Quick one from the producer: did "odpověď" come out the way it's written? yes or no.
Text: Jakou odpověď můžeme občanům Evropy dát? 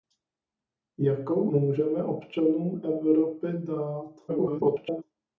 no